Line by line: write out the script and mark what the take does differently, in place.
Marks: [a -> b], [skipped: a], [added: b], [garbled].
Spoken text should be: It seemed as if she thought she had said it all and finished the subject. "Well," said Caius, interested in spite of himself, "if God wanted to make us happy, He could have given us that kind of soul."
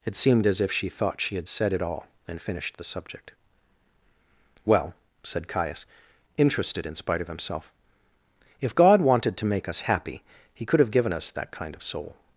It seemed as if she thought she had said it all and finished the subject. "Well," said Caius, interested in spite of himself, "if God wanted to make us happy, He could have given us that kind of soul."